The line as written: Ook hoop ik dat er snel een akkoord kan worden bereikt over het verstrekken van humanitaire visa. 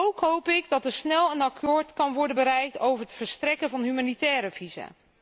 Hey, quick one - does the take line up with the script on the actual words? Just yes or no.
yes